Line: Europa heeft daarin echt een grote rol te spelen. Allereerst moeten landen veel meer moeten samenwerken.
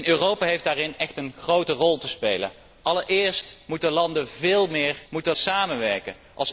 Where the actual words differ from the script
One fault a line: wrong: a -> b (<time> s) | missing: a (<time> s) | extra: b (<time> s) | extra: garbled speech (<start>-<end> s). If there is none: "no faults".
no faults